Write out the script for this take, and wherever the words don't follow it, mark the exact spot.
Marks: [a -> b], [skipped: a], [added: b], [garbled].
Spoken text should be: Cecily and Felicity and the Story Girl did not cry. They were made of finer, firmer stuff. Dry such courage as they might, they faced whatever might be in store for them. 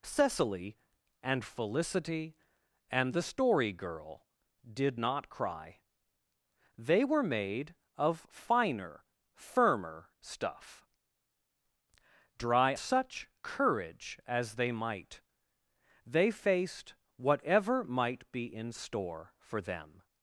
Cecily and Felicity and the Story Girl did not cry. They were made of finer, firmer stuff. Dry such courage as they might, they faced whatever might be in store for them.